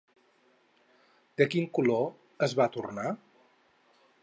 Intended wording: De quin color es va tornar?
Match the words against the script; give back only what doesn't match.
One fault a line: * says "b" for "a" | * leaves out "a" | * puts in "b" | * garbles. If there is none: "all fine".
all fine